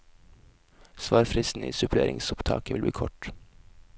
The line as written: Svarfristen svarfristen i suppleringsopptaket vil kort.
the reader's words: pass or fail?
fail